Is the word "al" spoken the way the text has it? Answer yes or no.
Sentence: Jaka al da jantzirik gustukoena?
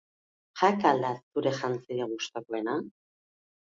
yes